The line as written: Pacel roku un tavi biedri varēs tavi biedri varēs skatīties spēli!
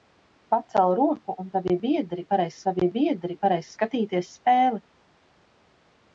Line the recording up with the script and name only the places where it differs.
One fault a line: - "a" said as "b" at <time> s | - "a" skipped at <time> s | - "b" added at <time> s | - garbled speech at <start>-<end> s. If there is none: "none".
none